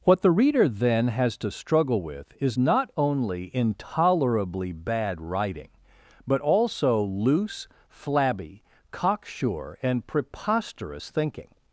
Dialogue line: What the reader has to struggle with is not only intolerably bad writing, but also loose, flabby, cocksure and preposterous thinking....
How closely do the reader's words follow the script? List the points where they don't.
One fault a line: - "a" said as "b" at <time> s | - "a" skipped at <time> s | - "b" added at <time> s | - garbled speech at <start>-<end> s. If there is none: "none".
- "then" added at 0.7 s